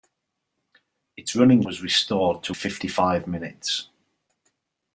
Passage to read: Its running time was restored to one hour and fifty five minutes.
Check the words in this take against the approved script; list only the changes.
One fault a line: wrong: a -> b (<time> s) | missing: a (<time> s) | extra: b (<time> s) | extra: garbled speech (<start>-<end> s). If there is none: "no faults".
missing: time (1.6 s)
missing: one hour and (2.5 s)